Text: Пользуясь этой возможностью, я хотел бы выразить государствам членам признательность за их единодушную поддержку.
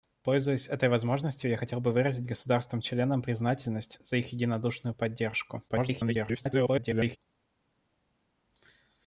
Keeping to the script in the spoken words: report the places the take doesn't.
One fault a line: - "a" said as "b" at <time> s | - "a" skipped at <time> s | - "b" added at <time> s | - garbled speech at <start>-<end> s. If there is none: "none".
- garbled speech at 5.7-7.2 s